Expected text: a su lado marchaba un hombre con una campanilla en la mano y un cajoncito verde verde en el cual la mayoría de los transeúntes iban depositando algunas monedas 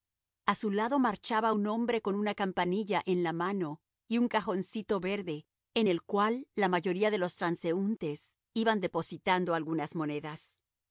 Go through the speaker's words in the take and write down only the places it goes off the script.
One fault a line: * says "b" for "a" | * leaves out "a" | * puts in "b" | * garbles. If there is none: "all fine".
* leaves out "verde"